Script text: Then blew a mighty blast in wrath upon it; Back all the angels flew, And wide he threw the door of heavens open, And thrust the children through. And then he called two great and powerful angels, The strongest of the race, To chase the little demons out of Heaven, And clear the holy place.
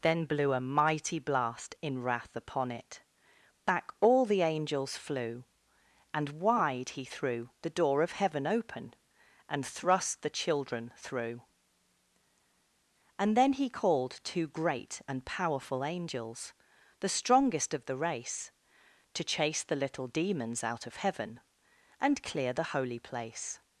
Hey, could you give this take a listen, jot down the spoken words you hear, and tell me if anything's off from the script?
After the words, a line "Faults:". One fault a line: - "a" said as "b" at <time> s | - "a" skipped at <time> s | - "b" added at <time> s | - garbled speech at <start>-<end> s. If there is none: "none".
Then blew a mighty blast in wrath upon it; Back all the angels flew, And wide he threw the door of heaven open, And thrust the children through. And then he called two great and powerful angels, The strongest of the race, To chase the little demons out of Heaven, And clear the holy place.
Faults:
- "heavens" said as "heaven" at 8.1 s